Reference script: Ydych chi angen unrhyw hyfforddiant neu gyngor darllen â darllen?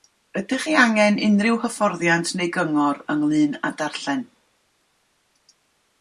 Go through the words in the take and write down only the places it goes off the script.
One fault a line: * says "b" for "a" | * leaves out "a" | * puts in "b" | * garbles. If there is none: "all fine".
* says "ynglŷn" for "darllen"